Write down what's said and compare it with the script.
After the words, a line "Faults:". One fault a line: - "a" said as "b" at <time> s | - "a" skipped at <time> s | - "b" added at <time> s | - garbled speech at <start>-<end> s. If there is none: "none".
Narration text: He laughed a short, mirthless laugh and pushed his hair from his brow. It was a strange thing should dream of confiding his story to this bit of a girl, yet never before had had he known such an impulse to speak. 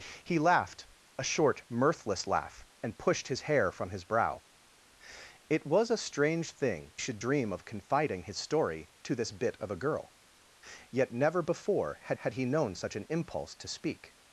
He laughed a short, mirthless laugh and pushed his hair from his brow. It was a strange thing should dream of confiding his story to this bit of a girl, yet never before had had he known such an impulse to speak.
Faults:
none